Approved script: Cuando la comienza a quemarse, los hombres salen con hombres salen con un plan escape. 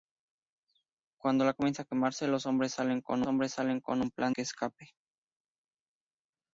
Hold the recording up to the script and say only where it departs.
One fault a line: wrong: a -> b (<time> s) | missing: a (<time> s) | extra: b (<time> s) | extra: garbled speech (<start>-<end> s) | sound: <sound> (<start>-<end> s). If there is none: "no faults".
no faults